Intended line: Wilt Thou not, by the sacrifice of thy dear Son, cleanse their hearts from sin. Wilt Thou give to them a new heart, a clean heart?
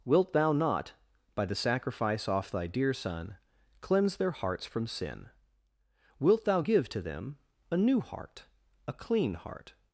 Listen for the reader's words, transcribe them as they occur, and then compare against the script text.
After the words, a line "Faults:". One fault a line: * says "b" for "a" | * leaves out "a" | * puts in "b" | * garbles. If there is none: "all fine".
Wilt Thou not, by the sacrifice off thy dear Son, cleanse their hearts from sin. Wilt Thou give to them a new heart, a clean heart?
Faults:
* says "off" for "of"